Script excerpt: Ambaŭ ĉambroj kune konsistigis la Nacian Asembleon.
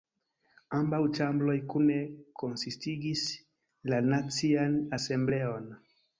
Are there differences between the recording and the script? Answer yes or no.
no